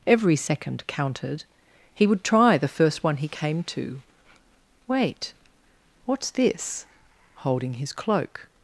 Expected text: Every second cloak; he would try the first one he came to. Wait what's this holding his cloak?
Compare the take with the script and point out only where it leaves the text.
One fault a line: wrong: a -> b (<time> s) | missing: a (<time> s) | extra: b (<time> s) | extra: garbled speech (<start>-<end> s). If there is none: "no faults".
wrong: cloak -> counted (0.9 s)